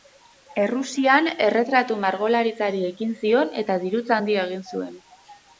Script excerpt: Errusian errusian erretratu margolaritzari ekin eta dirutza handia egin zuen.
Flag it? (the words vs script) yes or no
yes